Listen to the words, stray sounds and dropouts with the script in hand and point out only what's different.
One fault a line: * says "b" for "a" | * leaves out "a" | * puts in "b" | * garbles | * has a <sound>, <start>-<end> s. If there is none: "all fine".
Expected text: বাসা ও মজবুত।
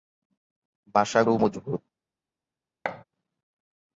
* has a thud, 2.8-3.0 s